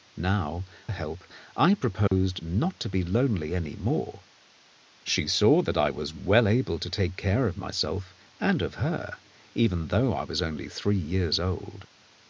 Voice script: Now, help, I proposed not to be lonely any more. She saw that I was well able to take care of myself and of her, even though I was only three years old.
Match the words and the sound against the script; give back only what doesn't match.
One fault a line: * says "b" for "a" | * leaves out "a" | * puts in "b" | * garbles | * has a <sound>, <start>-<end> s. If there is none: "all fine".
* has a dropout, 2.1-2.1 s